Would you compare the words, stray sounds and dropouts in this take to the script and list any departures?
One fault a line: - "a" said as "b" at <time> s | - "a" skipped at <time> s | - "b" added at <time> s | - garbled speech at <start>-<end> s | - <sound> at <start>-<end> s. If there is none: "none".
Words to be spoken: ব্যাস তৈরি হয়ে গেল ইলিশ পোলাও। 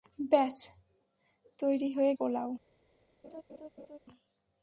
- "গেল ইলিশ" skipped at 2.1 s
- laugh at 3.2-4.0 s